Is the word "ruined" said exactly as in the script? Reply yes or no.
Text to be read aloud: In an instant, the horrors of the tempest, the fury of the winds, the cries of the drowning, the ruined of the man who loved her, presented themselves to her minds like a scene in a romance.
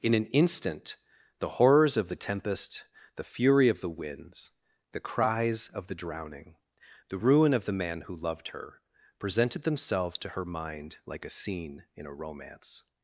no